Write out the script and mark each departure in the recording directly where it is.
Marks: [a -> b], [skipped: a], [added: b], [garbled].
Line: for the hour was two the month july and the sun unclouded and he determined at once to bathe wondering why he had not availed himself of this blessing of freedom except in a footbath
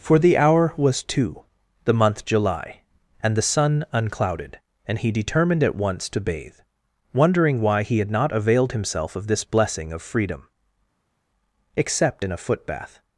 for the hour was two the month july and the sun unclouded and he determined at once to bathe wondering why he had not availed himself of this blessing of freedom except in a footbath